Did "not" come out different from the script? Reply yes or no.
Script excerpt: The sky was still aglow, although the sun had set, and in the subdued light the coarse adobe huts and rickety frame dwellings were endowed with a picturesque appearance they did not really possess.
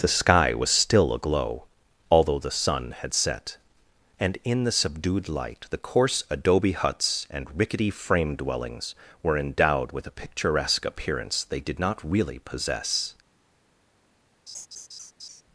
no